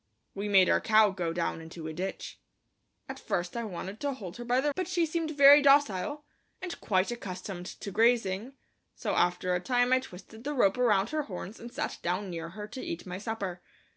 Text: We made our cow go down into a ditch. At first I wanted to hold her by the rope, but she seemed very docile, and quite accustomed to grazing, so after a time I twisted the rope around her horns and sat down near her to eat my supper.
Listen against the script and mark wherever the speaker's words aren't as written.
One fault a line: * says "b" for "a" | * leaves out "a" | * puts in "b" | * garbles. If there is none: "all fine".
* leaves out "rope"